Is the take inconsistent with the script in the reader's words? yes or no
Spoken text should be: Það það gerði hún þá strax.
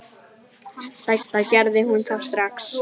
no